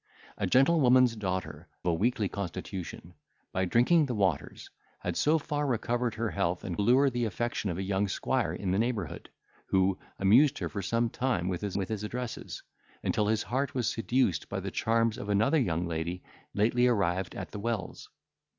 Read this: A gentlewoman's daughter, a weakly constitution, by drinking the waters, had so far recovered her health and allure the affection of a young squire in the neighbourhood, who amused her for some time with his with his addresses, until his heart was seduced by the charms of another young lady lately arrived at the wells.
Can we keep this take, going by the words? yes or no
yes